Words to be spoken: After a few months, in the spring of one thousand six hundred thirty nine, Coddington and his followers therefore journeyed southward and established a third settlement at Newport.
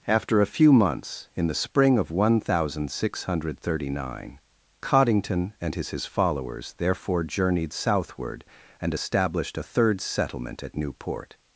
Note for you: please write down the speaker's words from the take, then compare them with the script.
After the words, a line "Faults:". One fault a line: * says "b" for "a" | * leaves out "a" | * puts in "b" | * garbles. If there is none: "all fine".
After a few months, in the spring of one thousand six hundred thirty nine, Coddington and his his followers therefore journeyed southward and established a third settlement at Newport.
Faults:
* puts in "his"